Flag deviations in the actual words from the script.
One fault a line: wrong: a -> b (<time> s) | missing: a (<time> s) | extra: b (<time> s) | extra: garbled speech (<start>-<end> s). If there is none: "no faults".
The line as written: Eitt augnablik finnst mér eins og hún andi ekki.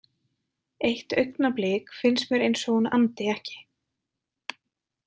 no faults